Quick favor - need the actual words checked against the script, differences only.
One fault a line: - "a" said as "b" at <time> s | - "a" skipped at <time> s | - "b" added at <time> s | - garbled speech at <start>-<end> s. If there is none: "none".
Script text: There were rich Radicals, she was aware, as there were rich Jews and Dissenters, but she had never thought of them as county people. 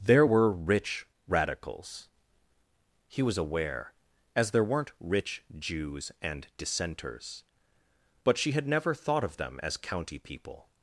- "she" said as "he" at 3.1 s
- "were" said as "weren't" at 4.6 s